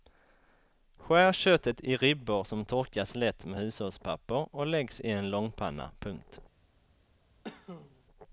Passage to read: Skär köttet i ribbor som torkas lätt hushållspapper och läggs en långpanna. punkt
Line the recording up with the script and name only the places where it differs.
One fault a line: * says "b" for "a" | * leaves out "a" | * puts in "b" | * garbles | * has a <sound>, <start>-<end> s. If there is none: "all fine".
* puts in "med"
* puts in "i"
* has a cough, 7.4-8.0 s